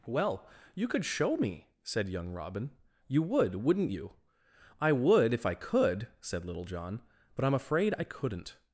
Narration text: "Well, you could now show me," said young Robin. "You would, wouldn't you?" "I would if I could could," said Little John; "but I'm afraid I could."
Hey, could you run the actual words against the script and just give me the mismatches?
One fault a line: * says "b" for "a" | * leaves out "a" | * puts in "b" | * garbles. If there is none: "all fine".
* leaves out "now"
* leaves out "could"
* says "couldn't" for "could"